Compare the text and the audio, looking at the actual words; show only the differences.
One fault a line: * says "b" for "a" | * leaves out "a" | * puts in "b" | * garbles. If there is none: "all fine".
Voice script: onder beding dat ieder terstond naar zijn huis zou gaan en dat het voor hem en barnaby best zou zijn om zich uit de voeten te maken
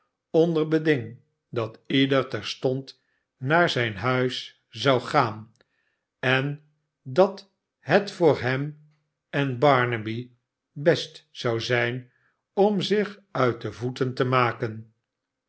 all fine